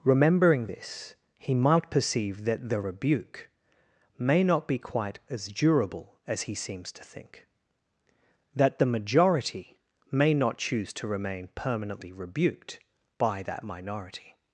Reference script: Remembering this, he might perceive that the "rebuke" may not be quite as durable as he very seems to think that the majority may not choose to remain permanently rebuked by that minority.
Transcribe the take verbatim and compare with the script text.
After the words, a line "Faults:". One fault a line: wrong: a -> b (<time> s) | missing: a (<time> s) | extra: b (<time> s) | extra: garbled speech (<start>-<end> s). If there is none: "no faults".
Remembering this, he might perceive that the "rebuke" may not be quite as durable as he seems to think that the majority may not choose to remain permanently rebuked by that minority.
Faults:
missing: very (6.5 s)